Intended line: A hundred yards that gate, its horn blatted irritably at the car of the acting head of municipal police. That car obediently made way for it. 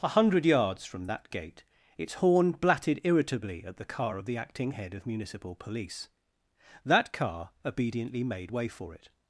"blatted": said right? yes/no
yes